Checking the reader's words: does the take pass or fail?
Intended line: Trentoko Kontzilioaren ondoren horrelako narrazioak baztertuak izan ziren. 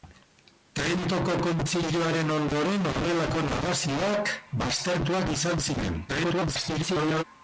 fail